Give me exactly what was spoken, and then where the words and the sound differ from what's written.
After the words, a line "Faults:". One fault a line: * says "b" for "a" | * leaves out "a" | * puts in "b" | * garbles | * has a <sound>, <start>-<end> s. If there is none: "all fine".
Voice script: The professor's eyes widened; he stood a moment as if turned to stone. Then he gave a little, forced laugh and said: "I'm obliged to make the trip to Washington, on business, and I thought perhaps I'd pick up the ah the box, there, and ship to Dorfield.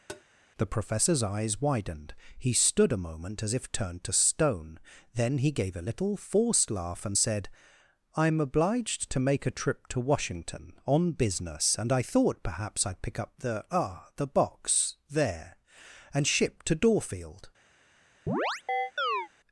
The professor's eyes widened; he stood a moment as if turned to stone. Then he gave a little, forced laugh and said: "I'm obliged to make a trip to Washington, on business, and I thought perhaps I'd pick up the ah the box, there, and ship to Dorfield.
Faults:
* has a tap, 0.1-0.2 s
* says "a" for "the"
* has a chirp, 18.3-19.3 s